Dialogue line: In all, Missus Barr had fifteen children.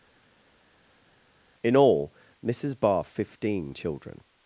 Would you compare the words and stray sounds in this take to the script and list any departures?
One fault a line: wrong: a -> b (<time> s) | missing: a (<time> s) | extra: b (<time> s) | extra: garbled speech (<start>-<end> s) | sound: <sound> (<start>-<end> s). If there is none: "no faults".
missing: had (3.0 s)